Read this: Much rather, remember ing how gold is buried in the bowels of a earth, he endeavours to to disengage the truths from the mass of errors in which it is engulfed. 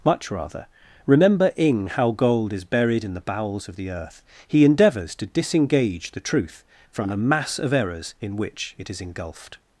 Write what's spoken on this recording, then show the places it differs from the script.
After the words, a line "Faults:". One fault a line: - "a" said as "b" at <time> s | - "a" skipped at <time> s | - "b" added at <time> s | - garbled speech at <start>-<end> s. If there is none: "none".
Much rather, remember ing how gold is buried in the bowels of the earth, he endeavours to disengage the truth from the mass of errors in which it is engulfed.
Faults:
- "a" said as "the" at 3.8 s
- "to" skipped at 5.3 s
- "truths" said as "truth" at 6.2 s